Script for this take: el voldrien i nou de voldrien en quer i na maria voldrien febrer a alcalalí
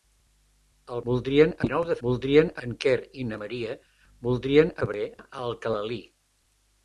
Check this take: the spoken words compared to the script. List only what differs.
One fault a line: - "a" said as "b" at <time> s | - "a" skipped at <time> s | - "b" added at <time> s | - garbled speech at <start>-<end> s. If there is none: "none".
none